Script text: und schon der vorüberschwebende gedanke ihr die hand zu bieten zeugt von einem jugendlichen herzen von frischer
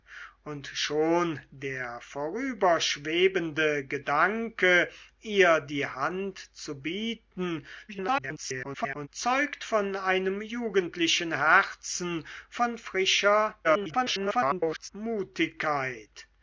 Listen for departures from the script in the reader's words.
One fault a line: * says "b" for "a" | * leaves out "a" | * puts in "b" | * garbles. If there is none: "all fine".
* garbles
* garbles